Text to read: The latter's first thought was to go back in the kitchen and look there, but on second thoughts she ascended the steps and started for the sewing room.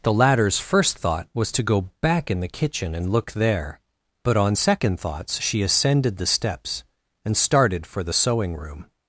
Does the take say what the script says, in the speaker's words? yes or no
yes